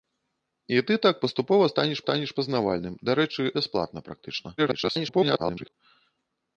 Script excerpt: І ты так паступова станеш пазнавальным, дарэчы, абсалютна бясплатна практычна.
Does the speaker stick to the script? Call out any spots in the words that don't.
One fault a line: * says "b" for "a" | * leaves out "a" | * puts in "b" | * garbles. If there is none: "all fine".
* puts in "станеш"
* leaves out "абсалютна"
* garbles